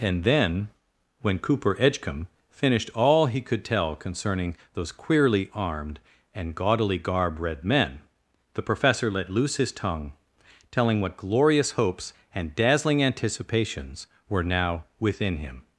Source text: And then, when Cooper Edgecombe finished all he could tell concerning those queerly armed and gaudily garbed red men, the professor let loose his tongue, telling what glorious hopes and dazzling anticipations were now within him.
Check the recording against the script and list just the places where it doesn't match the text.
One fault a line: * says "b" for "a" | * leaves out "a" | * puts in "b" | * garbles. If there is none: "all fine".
* says "garb" for "garbed"